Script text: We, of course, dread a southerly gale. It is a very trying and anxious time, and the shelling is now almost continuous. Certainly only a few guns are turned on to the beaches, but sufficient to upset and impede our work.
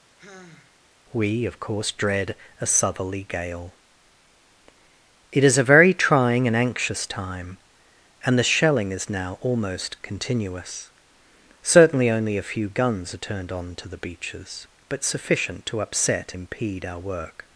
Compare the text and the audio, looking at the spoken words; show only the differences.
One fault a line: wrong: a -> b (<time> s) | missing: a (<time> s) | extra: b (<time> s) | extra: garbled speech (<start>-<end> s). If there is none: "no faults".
missing: and (16.3 s)